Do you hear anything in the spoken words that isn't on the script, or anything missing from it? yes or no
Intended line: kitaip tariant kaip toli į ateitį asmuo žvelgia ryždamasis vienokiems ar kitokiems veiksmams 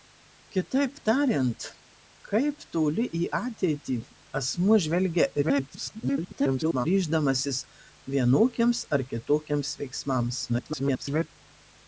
yes